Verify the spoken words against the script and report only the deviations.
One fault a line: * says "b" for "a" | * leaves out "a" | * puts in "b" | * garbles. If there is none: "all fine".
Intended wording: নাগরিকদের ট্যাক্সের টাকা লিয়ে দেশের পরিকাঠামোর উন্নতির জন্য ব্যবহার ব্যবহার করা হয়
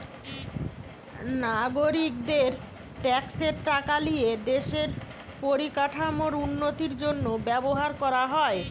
* leaves out "ব্যবহার"